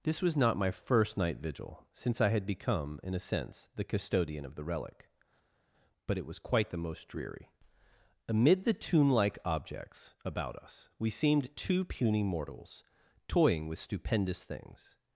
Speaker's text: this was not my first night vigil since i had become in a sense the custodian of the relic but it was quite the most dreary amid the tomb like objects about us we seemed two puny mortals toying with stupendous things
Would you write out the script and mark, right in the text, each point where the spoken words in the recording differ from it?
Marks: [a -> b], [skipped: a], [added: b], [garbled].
this was not my first night vigil since i had become in a sense the custodian of the relic but it was quite the most dreary amid the tomb like objects about us we seemed two puny mortals toying with stupendous things